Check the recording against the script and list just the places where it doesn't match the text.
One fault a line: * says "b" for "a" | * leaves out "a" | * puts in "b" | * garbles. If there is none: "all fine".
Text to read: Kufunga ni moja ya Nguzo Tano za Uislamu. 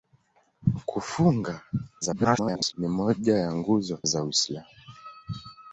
* garbles
* leaves out "Tano"